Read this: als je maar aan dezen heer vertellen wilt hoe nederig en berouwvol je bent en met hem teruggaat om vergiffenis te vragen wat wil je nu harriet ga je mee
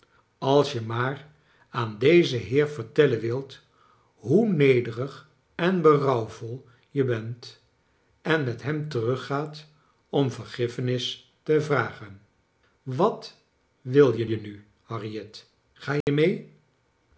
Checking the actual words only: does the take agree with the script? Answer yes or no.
no